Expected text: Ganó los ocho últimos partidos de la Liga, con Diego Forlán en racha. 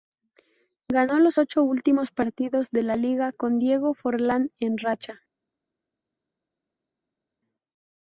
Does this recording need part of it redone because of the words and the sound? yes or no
no